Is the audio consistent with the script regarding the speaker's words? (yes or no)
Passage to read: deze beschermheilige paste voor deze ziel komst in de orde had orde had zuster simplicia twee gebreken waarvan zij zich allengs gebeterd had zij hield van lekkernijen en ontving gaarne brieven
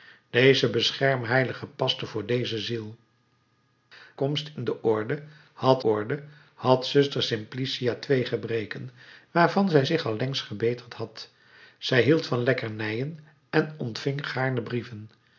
yes